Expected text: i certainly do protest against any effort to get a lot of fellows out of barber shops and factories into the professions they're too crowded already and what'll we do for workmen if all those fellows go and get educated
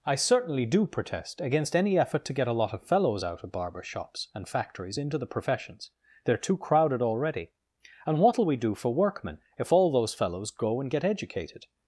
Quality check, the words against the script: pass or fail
pass